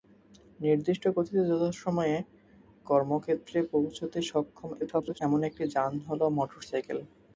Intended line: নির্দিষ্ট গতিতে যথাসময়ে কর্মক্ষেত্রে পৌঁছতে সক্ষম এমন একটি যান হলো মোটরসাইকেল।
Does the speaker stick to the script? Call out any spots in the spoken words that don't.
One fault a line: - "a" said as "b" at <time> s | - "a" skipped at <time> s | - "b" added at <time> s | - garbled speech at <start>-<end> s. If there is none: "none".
- garbled speech at 4.8-5.2 s